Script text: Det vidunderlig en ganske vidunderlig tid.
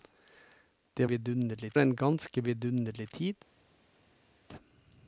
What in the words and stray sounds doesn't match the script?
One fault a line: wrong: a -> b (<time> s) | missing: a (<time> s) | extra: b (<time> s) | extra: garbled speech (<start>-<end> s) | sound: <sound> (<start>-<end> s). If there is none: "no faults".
no faults